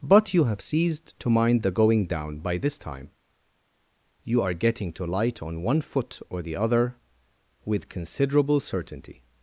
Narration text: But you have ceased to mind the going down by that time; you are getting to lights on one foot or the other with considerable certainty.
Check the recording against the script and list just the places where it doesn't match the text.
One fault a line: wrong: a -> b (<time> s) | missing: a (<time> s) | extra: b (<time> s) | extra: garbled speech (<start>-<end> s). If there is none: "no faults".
wrong: that -> this (2.6 s)
wrong: lights -> light (5.0 s)